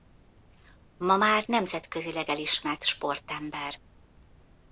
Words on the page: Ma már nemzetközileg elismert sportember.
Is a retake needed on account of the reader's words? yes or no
no